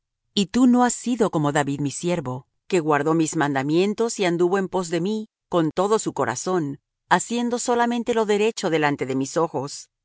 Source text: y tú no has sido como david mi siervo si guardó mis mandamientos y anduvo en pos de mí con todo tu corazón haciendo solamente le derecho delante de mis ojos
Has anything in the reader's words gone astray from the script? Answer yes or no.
yes